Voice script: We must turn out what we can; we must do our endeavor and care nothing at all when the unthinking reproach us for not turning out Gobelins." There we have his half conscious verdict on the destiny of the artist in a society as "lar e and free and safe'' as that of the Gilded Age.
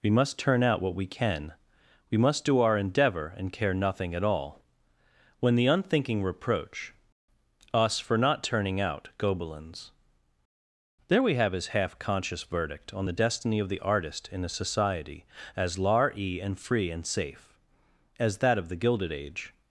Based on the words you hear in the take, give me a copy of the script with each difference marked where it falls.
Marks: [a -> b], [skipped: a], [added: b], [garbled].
We must turn out what we can; we must do our endeavor and care nothing at all when the unthinking reproach us for not turning out Gobelins." There we have his half conscious verdict on the destiny of the artist in a society as "lar e and free and safe'' as that of the Gilded Age.